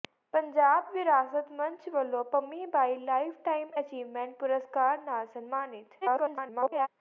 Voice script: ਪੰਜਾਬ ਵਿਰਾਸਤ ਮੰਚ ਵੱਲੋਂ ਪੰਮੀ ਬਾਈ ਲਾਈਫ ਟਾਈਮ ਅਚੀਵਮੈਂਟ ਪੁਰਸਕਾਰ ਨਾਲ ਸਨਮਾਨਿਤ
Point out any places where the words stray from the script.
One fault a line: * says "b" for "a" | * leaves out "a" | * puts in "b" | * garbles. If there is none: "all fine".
* garbles